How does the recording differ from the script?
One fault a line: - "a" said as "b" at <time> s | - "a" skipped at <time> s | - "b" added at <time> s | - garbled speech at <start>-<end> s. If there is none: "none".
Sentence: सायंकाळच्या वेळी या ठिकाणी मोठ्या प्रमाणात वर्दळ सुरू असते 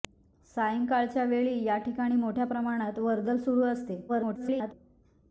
- garbled speech at 4.1-4.7 s